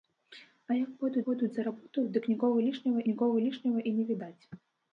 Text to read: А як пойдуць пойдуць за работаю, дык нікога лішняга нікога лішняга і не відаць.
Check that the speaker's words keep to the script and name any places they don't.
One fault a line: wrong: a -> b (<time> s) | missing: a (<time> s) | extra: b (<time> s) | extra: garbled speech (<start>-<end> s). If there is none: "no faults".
no faults